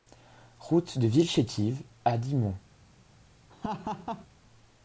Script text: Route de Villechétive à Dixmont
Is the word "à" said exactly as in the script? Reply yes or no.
yes